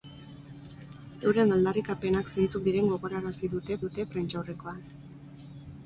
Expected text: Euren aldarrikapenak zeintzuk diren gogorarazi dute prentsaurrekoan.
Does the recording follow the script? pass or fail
fail